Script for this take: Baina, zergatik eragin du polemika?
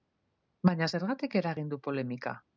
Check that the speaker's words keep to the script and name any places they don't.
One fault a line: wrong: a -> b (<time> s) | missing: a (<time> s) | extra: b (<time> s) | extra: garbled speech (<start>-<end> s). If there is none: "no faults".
no faults